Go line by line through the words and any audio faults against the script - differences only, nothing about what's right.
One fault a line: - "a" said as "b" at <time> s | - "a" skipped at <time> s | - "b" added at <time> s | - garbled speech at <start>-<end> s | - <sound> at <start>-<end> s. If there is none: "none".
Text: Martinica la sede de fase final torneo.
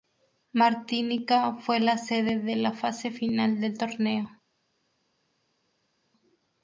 - "fue" added at 1.5 s
- "la" added at 2.5 s
- "del" added at 3.6 s